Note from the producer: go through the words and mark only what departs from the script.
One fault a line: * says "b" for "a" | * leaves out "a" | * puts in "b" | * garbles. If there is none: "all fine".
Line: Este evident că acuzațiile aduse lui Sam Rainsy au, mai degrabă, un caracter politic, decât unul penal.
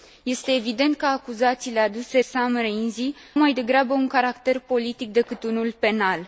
* leaves out "lui"
* leaves out "au"